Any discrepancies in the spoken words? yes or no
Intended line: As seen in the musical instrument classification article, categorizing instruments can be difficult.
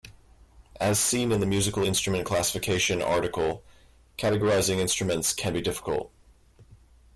no